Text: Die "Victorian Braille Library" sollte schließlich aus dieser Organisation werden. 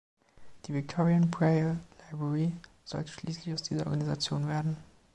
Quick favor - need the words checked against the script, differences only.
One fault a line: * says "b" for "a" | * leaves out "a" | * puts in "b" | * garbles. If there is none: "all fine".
all fine